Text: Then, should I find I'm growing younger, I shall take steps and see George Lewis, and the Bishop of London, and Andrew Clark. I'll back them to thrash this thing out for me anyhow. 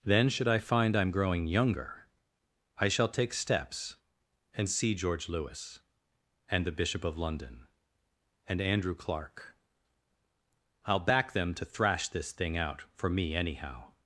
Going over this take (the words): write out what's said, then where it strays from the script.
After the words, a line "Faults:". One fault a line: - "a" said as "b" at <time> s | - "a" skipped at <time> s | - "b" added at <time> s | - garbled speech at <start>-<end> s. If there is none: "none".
Then, should I find I'm growing younger, I shall take steps and see George Lewis, and the Bishop of London, and Andrew Clark. I'll back them to thrash this thing out for me anyhow.
Faults:
none